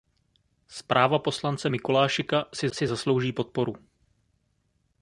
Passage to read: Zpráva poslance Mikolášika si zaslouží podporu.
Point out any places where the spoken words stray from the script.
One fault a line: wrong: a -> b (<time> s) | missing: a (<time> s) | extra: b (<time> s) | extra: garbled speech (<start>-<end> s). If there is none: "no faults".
extra: si (2.7 s)